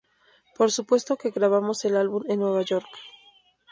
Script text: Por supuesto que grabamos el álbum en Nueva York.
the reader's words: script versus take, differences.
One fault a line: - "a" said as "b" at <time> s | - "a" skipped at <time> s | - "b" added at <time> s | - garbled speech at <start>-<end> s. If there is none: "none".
none